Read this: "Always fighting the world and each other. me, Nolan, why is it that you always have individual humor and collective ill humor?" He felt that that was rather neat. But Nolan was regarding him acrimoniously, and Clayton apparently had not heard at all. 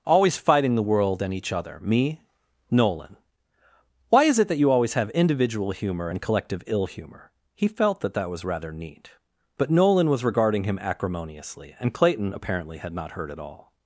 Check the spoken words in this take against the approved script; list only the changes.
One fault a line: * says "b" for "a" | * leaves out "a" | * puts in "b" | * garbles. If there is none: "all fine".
all fine